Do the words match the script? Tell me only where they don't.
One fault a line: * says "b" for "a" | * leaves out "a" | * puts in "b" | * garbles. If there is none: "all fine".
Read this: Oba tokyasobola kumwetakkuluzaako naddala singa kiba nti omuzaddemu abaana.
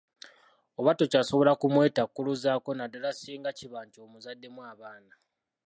all fine